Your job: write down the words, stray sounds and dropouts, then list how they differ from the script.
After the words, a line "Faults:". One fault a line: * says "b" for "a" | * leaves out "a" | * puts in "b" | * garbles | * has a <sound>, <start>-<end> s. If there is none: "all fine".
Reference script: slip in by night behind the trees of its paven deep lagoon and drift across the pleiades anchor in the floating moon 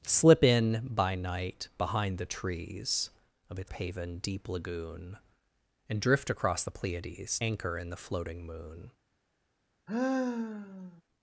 slip in by night behind the trees of its paven deep lagoon and drift across the pleiades anchor in the floating moon
Faults:
* has a sigh, 9.9-11.0 s